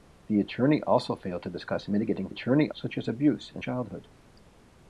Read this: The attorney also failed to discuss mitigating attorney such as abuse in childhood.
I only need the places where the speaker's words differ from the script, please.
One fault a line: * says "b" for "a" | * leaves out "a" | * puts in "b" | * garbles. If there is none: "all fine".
all fine